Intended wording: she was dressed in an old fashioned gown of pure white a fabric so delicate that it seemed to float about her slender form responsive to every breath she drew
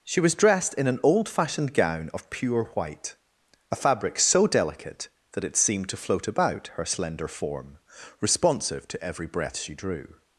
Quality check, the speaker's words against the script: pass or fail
pass